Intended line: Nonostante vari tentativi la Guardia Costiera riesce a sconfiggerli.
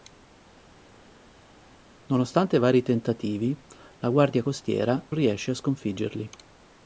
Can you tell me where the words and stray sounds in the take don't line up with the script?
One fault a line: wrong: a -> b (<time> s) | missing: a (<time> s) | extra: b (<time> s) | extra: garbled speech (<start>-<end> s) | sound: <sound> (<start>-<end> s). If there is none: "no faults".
no faults